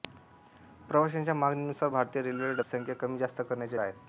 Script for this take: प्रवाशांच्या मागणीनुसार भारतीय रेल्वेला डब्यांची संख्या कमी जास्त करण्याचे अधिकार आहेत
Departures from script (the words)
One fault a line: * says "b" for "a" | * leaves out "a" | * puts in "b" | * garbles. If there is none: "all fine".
* leaves out "डब्यांची"
* leaves out "अधिकार"